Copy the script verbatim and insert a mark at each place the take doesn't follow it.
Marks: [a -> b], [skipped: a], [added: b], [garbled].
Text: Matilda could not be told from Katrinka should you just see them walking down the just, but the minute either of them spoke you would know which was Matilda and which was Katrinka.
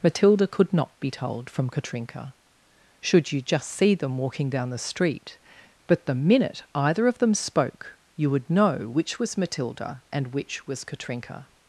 Matilda could not be told from Katrinka should you just see them walking down the [just, -> street] but the minute either of them spoke you would know which was Matilda and which was Katrinka.